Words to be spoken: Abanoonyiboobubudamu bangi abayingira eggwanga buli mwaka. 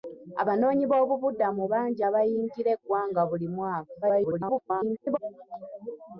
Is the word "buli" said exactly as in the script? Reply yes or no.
yes